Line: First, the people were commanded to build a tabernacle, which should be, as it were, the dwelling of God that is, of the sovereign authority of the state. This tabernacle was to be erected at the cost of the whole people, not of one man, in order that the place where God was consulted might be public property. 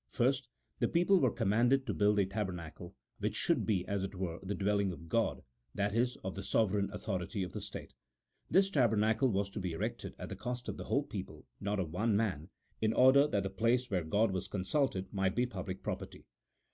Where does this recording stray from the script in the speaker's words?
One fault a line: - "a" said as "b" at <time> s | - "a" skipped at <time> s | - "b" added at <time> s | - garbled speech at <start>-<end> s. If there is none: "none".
none